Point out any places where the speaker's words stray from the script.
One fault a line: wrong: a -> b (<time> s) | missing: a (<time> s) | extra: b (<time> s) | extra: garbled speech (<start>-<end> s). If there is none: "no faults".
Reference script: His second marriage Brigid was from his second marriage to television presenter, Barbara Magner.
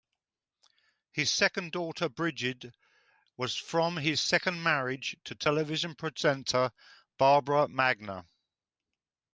wrong: marriage -> daughter (1.7 s)